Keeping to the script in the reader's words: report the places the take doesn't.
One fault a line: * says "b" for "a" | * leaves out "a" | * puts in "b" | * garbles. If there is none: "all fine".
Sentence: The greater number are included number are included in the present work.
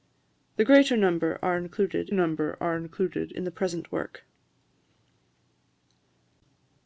all fine